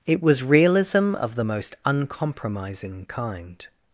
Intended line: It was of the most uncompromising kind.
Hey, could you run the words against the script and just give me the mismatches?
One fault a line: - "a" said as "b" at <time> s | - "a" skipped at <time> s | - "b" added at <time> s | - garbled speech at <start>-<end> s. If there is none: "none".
- "realism" added at 0.4 s